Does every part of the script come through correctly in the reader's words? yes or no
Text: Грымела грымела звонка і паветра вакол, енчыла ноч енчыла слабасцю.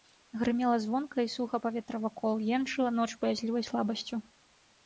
no